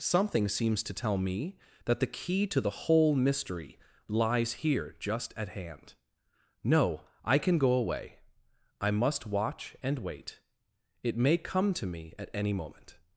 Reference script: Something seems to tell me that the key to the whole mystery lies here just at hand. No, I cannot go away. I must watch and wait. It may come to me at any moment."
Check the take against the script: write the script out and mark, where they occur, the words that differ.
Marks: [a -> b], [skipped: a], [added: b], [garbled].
Something seems to tell me that the key to the whole mystery lies here just at hand. No, I [cannot -> can] go away. I must watch and wait. It may come to me at any moment."